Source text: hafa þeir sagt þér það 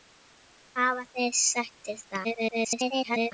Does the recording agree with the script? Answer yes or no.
no